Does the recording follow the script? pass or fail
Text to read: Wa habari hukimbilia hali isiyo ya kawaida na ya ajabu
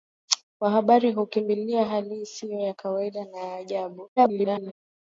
fail